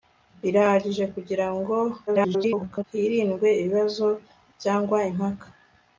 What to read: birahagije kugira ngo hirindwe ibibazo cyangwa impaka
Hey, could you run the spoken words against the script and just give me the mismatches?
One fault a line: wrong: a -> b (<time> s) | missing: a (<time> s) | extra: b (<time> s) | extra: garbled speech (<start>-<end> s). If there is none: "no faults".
extra: garbled speech (2.1-2.8 s)